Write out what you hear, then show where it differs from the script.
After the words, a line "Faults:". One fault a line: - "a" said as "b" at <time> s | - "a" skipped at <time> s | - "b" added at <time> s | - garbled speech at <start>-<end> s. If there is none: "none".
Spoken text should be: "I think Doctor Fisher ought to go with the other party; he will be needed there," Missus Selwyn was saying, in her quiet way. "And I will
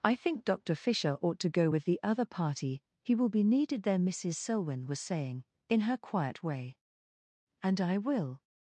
"I think Doctor Fisher ought to go with the other party; he will be needed there," Missus Selwyn was saying, in her quiet way. "And I will
Faults:
none